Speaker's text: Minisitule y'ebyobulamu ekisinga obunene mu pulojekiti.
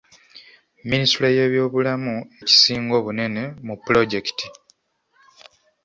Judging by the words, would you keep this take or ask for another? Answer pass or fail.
pass